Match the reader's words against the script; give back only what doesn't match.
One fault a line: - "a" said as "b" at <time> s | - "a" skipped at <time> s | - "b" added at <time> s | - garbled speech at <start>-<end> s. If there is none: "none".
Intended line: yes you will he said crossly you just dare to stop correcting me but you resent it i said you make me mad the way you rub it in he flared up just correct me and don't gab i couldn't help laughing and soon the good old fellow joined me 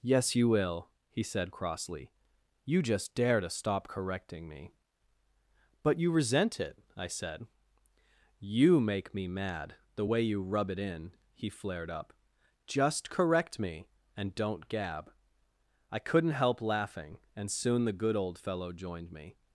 none